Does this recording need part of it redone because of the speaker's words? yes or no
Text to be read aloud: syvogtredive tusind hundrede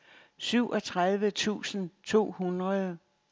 yes